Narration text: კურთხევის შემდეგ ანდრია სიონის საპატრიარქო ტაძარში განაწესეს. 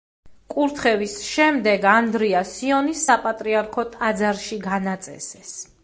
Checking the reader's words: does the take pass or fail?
pass